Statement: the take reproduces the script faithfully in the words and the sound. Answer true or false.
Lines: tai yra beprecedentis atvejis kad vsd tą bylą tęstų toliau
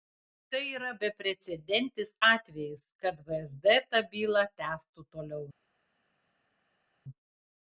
true